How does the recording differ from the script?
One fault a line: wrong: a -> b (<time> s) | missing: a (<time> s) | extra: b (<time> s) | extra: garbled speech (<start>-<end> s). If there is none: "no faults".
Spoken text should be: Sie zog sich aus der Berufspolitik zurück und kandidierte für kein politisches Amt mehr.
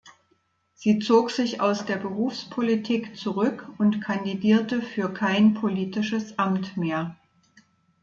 no faults